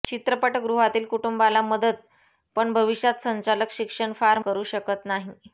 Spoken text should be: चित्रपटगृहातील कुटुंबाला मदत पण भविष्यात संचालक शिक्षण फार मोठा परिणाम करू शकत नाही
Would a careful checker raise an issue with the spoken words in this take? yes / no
yes